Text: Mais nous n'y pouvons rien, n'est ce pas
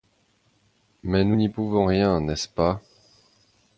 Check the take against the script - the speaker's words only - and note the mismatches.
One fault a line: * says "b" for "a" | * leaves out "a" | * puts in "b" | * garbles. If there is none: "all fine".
all fine